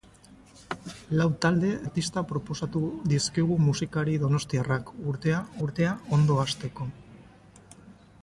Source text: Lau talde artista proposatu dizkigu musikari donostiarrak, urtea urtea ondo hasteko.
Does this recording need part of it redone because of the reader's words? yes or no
no